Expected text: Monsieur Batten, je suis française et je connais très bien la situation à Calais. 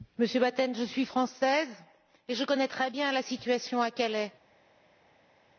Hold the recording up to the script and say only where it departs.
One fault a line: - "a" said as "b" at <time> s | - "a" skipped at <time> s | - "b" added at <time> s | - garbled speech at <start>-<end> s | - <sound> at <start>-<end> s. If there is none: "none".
none